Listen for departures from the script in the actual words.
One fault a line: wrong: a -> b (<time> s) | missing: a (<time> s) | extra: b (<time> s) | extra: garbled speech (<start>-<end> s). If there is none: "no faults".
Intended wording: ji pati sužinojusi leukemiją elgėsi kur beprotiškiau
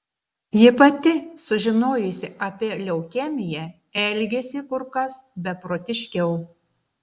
extra: apie (2.5 s)
extra: kas (5.0 s)